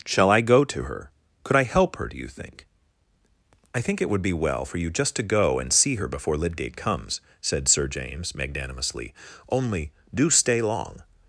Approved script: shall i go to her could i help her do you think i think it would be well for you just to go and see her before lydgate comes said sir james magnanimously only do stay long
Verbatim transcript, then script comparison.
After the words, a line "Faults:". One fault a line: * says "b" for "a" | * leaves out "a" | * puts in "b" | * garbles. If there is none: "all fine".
shall i go to her could i help her do you think i think it would be well for you just to go and see her before lydgate comes said sir james magnanimously only do stay long
Faults:
all fine